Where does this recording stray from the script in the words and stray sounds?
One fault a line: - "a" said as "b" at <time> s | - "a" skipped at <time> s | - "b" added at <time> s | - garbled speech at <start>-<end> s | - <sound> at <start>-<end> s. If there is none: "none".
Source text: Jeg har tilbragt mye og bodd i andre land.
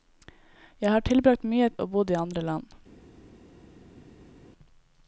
none